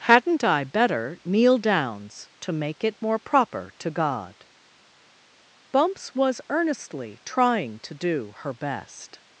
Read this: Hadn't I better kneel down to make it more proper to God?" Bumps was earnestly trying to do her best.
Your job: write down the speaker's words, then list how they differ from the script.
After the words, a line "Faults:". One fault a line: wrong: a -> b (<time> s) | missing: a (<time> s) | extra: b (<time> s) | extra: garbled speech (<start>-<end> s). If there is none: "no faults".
Hadn't I better kneel downs to make it more proper to God?" Bumps was earnestly trying to do her best.
Faults:
wrong: down -> downs (1.6 s)